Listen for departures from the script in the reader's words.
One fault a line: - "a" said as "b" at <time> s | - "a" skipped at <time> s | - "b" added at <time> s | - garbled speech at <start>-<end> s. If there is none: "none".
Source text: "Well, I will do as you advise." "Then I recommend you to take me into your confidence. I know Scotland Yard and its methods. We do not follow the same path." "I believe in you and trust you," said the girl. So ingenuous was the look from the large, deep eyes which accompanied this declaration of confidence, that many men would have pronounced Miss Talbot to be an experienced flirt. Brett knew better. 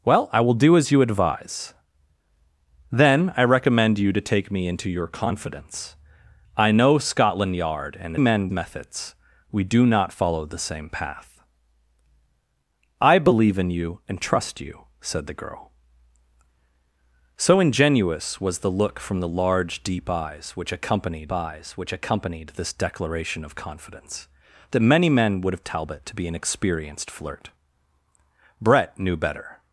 - "its" said as "men" at 8.2 s
- "eyes which accompanied" added at 21.3 s
- "pronounced Miss" skipped at 25.6 s